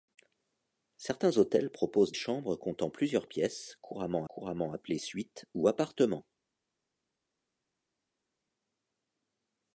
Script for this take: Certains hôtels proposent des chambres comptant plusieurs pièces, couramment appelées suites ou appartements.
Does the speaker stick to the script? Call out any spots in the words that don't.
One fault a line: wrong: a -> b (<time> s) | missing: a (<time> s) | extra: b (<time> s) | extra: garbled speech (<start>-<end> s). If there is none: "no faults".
missing: des (2.1 s)
extra: couramment (4.3 s)